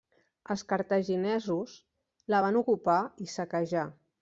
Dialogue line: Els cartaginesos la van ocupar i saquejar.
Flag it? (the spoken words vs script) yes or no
no